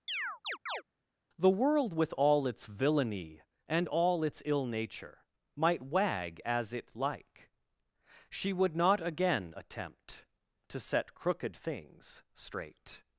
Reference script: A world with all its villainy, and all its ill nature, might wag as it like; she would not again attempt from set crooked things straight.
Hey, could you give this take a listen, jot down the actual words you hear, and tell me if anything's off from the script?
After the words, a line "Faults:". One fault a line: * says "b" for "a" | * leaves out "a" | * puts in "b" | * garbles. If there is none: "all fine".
The world with all its villainy, and all its ill nature, might wag as it like; she would not again attempt to set crooked things straight.
Faults:
* says "The" for "A"
* says "to" for "from"